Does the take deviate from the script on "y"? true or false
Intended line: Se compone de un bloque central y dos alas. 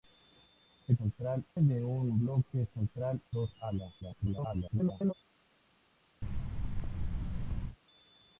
true